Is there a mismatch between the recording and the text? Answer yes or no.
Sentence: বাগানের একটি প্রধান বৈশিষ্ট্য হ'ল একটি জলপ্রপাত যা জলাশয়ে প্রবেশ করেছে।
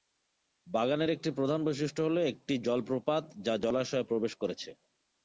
no